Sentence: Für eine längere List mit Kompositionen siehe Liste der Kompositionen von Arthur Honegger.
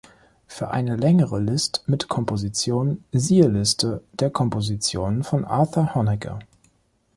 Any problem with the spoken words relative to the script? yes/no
no